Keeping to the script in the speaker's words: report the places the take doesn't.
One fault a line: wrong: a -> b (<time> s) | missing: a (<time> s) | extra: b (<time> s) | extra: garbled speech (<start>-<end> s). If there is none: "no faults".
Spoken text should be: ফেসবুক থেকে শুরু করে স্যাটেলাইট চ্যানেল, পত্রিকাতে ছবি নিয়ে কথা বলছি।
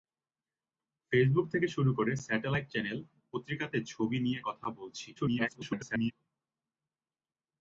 extra: garbled speech (5.2-6.1 s)